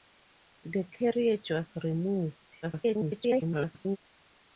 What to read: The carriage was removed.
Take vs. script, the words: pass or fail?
fail